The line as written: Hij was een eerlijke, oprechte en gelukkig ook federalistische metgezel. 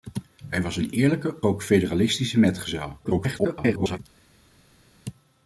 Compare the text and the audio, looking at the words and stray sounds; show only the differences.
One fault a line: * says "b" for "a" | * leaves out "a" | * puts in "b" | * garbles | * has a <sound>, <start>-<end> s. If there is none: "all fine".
* leaves out "oprechte en gelukkig"
* garbles